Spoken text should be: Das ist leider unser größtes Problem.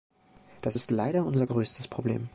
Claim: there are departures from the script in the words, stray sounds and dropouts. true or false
false